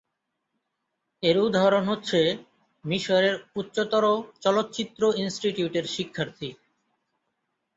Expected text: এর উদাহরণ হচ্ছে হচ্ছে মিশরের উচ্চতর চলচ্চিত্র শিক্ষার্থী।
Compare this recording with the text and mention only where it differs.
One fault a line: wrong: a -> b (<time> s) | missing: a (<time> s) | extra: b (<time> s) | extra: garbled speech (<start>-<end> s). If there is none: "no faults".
missing: হচ্ছে (2.2 s)
extra: ইনস্টিটিউটের (5.2 s)